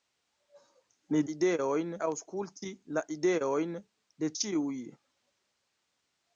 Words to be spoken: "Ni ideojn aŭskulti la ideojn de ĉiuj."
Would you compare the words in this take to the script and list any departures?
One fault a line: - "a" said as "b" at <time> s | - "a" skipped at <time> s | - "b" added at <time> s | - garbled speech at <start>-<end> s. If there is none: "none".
none